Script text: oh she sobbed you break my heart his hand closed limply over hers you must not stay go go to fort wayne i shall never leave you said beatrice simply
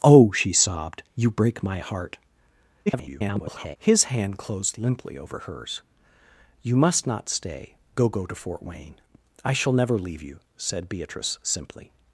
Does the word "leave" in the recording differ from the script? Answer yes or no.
no